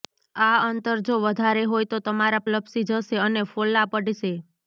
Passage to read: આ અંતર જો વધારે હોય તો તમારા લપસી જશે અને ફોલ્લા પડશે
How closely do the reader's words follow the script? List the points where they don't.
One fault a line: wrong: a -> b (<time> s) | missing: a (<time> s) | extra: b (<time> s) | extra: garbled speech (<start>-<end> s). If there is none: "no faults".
no faults